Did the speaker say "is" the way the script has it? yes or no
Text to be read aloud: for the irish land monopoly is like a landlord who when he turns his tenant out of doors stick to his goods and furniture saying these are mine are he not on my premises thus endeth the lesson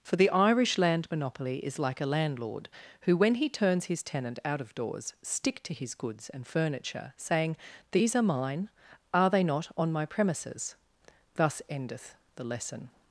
yes